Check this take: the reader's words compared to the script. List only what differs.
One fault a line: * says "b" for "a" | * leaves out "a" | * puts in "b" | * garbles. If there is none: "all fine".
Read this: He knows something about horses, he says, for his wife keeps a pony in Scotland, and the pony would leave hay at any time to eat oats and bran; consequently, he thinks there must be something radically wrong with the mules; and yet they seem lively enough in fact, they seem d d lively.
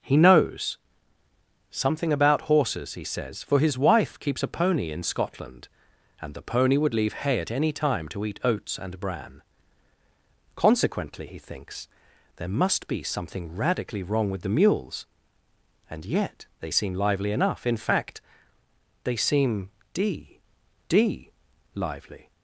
all fine